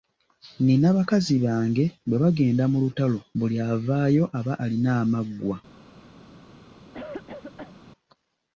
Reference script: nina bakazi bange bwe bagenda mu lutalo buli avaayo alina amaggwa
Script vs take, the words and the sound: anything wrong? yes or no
yes